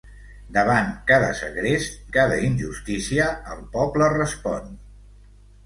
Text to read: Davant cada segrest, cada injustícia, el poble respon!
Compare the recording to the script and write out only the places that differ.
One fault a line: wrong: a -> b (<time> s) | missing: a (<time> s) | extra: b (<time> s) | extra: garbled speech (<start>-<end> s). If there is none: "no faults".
no faults